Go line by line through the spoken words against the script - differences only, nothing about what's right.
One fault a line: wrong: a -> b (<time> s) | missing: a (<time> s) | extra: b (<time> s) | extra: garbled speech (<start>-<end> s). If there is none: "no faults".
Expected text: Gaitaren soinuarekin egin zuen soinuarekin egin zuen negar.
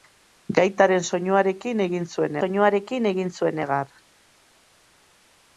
no faults